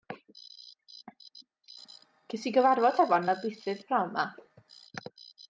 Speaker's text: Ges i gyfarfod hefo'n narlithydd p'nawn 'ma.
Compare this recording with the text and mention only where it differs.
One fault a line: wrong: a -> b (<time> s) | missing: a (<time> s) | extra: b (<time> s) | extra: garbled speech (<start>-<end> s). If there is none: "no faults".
no faults